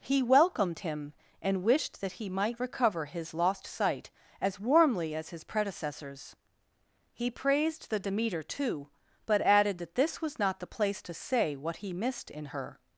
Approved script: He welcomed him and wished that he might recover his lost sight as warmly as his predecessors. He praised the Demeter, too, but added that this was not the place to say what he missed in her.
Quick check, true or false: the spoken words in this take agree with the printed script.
true